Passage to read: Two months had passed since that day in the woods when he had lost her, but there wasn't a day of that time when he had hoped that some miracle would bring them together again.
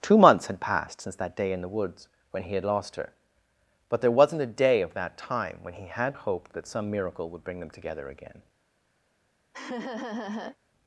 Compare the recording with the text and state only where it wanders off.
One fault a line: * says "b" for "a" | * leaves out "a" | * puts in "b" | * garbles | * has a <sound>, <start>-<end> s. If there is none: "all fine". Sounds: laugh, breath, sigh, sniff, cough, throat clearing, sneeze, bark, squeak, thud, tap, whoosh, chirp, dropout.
* has a laugh, 9.5-10.6 s